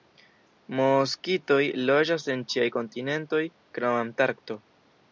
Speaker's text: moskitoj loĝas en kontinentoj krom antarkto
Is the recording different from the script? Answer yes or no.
yes